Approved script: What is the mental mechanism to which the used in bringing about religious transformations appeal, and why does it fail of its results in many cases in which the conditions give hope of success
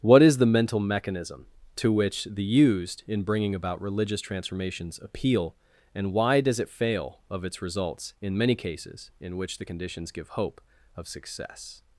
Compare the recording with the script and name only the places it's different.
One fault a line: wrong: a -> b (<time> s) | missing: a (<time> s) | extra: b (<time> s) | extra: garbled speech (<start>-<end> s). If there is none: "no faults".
no faults